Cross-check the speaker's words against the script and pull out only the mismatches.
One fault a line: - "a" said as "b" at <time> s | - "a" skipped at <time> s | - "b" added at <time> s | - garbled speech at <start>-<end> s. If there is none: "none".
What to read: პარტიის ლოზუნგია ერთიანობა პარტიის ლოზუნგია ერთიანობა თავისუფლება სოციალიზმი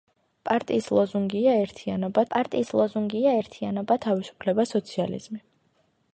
none